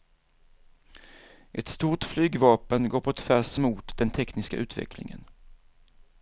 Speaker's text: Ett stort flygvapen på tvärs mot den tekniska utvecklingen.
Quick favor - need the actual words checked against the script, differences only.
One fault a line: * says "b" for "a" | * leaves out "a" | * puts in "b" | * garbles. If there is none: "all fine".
* puts in "går"